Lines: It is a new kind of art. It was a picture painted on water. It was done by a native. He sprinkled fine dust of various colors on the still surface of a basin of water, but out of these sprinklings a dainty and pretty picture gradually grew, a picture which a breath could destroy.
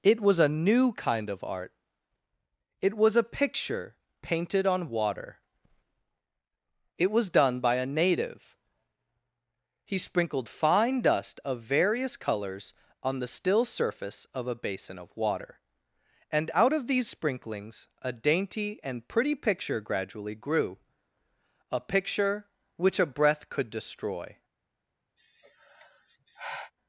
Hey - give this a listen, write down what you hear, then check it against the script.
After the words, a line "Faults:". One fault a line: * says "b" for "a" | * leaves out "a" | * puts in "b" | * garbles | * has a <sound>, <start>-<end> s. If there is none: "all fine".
It was a new kind of art. It was a picture painted on water. It was done by a native. He sprinkled fine dust of various colors on the still surface of a basin of water, and out of these sprinklings a dainty and pretty picture gradually grew, a picture which a breath could destroy.
Faults:
* says "was" for "is"
* says "and" for "but"
* has a sigh, 25.2-26.7 s